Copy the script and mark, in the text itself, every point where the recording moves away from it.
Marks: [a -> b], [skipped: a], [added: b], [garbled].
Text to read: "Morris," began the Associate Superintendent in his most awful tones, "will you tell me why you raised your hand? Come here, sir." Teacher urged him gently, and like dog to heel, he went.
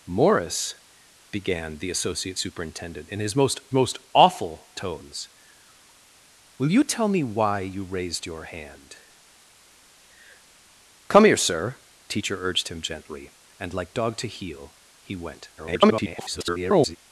"Morris," began the Associate Superintendent in his most [added: most] awful tones, "will you tell me why you raised your hand? Come here, sir." Teacher urged him gently, and like dog to heel, he went. [garbled]